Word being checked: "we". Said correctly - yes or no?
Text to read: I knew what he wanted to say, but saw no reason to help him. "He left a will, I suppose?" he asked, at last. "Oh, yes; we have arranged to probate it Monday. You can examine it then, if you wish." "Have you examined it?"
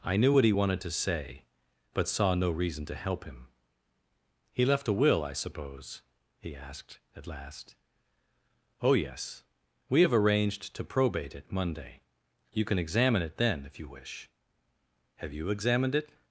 yes